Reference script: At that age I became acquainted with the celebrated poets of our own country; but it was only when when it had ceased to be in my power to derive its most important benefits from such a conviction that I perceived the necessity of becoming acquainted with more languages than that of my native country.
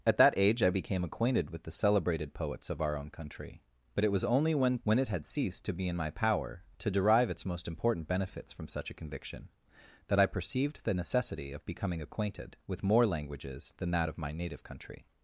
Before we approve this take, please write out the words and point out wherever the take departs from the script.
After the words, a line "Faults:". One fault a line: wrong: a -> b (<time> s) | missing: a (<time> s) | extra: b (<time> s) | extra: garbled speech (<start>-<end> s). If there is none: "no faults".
At that age I became acquainted with the celebrated poets of our own country; but it was only when when it had ceased to be in my power to derive its most important benefits from such a conviction that I perceived the necessity of becoming acquainted with more languages than that of my native country.
Faults:
no faults